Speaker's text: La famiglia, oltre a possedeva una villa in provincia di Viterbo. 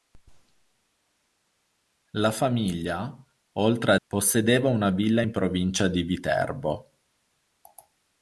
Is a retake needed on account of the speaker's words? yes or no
no